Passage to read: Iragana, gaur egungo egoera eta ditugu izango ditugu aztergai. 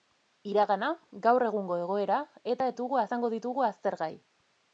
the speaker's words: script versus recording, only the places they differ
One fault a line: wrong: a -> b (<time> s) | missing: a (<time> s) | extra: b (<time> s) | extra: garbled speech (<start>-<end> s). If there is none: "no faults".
no faults